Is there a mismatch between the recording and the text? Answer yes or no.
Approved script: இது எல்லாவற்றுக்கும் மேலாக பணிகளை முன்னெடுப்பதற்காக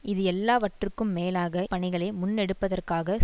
no